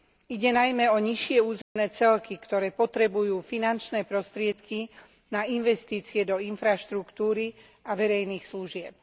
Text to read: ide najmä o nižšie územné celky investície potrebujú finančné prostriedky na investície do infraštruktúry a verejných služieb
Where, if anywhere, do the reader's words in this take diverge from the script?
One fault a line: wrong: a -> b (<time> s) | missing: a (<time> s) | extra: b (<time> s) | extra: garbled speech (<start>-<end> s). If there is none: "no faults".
wrong: investície -> ktoré (2.4 s)